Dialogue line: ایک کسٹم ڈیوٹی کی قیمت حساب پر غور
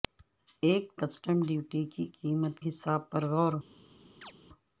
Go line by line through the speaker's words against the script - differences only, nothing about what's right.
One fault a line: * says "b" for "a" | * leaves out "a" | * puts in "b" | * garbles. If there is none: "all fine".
all fine